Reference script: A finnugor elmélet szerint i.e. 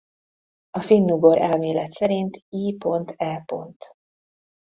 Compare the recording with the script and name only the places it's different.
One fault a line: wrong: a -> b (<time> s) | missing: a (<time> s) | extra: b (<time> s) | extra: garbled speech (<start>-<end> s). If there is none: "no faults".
no faults